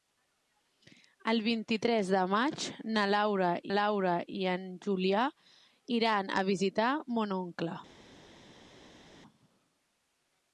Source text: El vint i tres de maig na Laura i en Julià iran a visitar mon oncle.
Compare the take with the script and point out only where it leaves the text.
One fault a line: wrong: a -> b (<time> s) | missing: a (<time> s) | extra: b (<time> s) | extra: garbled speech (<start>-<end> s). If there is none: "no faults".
extra: Laura (3.7 s)